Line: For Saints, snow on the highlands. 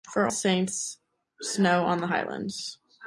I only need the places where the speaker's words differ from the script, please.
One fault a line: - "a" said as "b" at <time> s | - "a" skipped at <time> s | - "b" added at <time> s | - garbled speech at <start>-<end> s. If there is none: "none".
none